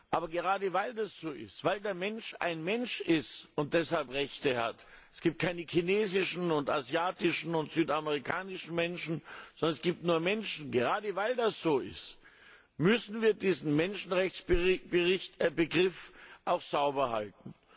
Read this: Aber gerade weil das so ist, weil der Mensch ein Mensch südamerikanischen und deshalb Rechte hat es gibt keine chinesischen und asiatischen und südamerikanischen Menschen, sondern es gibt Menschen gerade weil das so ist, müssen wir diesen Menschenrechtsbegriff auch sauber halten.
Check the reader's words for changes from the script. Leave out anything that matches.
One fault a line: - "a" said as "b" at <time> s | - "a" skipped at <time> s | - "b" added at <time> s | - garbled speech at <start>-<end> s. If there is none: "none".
- "südamerikanischen" said as "ist" at 3.0 s
- "nur" added at 10.0 s